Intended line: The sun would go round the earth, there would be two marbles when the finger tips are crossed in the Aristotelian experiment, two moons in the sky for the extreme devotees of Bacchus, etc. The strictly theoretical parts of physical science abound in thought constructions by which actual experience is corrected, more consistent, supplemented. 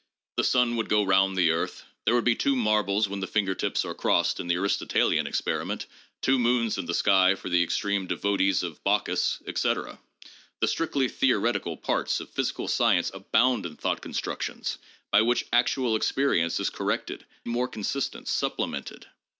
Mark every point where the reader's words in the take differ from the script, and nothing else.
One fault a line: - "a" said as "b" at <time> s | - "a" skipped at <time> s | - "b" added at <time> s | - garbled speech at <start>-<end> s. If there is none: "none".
none